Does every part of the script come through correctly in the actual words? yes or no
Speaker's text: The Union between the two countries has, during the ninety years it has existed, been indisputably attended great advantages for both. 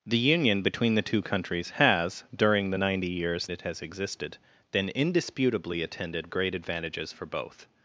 yes